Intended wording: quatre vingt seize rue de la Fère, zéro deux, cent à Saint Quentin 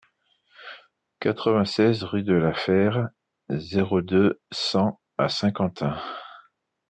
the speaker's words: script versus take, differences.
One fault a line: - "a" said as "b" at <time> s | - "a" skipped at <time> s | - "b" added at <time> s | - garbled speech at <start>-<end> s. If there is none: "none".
none